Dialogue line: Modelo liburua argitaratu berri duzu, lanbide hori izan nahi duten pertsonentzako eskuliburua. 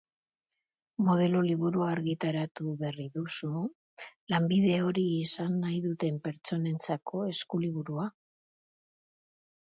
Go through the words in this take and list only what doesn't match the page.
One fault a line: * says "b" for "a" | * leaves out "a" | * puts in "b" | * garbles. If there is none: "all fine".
all fine